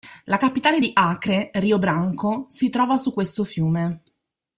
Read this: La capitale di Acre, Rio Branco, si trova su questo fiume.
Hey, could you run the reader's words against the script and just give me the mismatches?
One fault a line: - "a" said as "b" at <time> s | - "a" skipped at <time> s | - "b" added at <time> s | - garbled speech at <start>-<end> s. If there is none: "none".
none